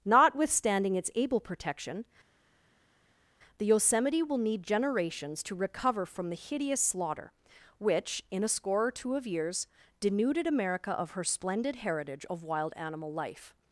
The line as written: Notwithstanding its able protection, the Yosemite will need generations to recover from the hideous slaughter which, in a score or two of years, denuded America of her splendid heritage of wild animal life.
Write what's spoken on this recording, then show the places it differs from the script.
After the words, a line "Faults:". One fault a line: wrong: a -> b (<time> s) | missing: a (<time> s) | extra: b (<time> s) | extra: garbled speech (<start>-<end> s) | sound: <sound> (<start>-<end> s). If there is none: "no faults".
Notwithstanding its able protection, the Yosemite will need generations to recover from the hideous slaughter which, in a score or two of years, denuded America of her splendid heritage of wild animal life.
Faults:
no faults